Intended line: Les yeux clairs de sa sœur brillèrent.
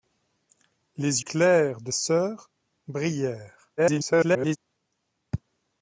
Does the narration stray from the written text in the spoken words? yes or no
yes